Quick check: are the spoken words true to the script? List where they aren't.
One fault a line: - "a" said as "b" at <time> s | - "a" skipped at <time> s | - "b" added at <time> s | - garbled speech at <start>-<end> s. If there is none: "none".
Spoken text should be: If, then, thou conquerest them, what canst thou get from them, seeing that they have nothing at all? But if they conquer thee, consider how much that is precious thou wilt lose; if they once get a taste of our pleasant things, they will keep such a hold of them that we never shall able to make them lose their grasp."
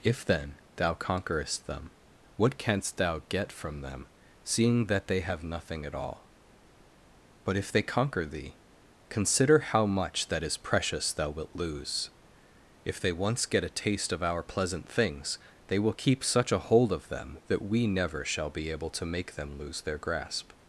- "be" added at 18.5 s